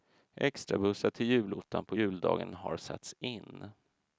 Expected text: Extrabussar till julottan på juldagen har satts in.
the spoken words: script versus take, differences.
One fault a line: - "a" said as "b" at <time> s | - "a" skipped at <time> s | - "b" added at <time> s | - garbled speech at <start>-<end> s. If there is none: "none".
none